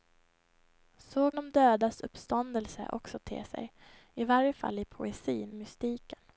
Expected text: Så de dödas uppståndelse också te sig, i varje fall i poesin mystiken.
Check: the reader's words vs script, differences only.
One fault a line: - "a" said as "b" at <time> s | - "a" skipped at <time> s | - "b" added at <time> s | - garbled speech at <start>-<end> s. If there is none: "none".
none